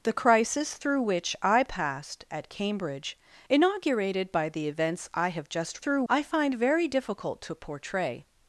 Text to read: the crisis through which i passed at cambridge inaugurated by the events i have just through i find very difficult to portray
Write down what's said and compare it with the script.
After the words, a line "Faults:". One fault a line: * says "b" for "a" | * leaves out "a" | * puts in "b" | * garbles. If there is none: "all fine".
the crisis through which i passed at cambridge inaugurated by the events i have just through i find very difficult to portray
Faults:
all fine